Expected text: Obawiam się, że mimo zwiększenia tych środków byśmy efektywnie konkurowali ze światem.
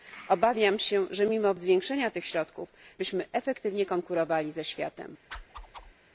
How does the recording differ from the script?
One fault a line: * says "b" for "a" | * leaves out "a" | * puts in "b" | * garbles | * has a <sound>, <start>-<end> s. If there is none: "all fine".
* has a whoosh, 5.3-5.9 s